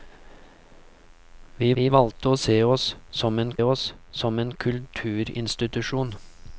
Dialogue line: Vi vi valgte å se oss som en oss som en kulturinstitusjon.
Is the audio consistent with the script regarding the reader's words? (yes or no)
yes